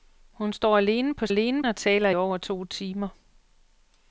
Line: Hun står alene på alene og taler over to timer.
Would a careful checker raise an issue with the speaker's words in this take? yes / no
no